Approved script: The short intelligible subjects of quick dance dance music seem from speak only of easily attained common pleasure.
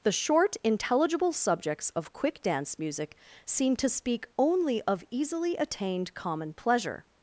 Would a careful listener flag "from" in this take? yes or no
yes